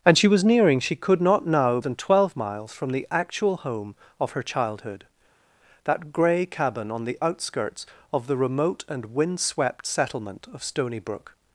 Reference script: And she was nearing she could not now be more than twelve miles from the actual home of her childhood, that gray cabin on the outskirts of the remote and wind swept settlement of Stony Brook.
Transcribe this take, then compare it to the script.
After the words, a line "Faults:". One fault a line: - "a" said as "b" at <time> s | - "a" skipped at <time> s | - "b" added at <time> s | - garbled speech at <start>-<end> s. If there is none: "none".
And she was nearing she could not now than twelve miles from the actual home of her childhood, that gray cabin on the outskirts of the remote and wind swept settlement of Stony Brook.
Faults:
- "be more" skipped at 1.8 s